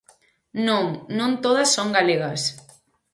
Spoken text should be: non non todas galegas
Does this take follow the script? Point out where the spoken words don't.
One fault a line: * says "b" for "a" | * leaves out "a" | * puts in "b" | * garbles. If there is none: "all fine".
* puts in "son"